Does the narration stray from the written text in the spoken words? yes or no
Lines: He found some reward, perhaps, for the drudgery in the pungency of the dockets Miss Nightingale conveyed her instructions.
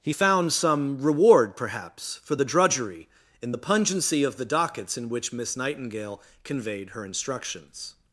yes